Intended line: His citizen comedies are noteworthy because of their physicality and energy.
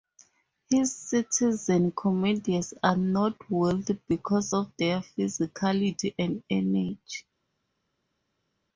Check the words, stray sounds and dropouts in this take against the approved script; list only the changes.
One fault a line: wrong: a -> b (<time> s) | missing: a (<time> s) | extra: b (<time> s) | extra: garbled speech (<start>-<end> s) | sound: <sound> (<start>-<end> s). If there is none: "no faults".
no faults